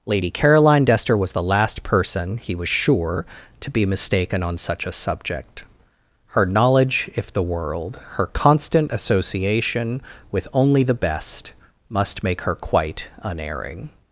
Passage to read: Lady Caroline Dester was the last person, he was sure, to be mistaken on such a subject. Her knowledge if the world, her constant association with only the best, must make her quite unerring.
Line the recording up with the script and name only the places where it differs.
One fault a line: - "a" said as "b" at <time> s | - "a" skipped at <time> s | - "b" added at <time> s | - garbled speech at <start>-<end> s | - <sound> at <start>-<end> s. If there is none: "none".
none